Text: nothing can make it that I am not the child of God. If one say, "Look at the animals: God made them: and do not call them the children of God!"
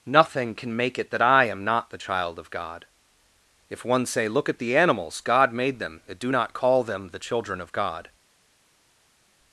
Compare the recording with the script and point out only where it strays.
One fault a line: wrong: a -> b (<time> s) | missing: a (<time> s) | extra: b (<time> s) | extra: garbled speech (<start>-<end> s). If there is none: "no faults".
no faults